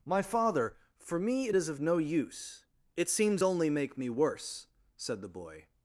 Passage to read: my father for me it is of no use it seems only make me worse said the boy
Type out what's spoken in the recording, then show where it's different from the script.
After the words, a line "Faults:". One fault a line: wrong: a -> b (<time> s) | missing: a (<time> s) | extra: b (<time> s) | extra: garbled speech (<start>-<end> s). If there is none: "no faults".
my father for me it is of no use it seems only make me worse said the boy
Faults:
no faults